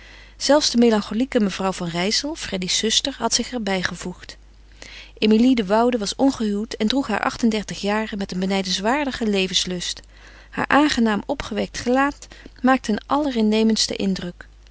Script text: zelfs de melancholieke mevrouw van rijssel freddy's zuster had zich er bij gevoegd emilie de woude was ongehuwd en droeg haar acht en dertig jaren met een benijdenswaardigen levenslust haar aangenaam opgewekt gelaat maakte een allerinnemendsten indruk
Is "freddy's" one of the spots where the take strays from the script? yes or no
no